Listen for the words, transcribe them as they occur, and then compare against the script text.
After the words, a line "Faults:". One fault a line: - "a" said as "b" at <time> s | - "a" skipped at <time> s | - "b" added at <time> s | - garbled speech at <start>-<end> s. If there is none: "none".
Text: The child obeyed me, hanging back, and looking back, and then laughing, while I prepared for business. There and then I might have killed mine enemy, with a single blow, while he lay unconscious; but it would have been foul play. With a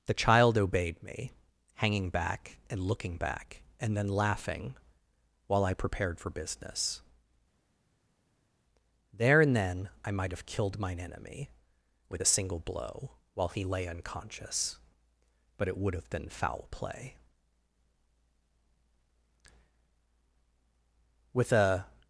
The child obeyed me, hanging back, and looking back, and then laughing, while I prepared for business. There and then I might have killed mine enemy, with a single blow, while he lay unconscious; but it would have been foul play. With a
Faults:
none